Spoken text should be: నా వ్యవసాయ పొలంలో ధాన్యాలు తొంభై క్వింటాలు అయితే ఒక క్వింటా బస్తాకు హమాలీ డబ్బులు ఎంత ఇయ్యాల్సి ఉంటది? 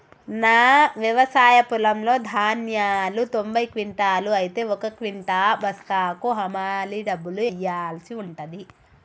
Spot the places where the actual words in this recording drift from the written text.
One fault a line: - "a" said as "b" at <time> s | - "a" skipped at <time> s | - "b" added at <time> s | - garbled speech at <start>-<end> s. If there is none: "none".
- "ఎంత" skipped at 7.4 s